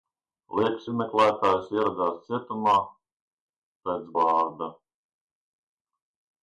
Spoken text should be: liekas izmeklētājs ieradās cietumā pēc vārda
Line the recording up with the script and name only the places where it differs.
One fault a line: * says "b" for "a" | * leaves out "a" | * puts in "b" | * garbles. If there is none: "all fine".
all fine